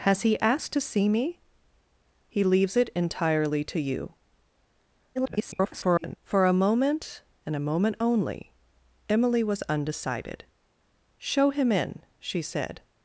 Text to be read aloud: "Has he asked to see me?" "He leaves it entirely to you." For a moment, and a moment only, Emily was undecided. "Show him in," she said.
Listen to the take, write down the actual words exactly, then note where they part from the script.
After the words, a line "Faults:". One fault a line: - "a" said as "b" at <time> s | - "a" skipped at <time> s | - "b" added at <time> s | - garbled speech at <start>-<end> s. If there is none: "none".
"Has he asked to see me?" "He leaves it entirely to you." [garbled] For a moment, and a moment only, Emily was undecided. "Show him in," she said.
Faults:
- garbled speech at 5.1-6.2 s